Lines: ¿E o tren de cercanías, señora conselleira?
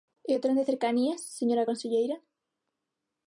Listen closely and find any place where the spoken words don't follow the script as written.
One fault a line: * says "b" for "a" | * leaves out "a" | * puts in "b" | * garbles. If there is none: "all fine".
all fine